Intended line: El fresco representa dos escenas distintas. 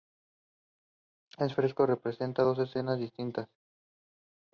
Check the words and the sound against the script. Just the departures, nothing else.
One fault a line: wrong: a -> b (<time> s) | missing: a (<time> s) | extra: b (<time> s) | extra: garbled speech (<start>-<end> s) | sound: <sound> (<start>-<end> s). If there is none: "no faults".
no faults